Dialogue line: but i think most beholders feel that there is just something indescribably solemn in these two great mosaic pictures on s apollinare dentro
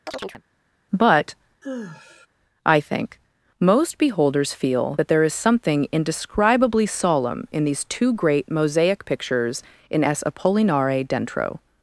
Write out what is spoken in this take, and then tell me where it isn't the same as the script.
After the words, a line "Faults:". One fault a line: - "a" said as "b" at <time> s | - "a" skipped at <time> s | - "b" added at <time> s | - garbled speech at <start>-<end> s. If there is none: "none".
but i think most beholders feel that there is something indescribably solemn in these two great mosaic pictures in s apollinare dentro
Faults:
- "just" skipped at 5.3 s
- "on" said as "in" at 9.9 s